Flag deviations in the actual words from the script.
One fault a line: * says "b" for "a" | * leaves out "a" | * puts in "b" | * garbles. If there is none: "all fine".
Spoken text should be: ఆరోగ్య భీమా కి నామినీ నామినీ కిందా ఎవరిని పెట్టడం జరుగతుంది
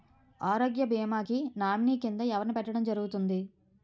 * leaves out "నామినీ"